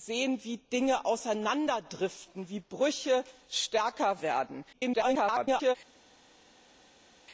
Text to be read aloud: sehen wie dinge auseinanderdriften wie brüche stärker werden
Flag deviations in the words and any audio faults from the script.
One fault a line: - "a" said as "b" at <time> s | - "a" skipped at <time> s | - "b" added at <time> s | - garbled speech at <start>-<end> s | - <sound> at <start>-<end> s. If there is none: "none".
- garbled speech at 4.7-5.8 s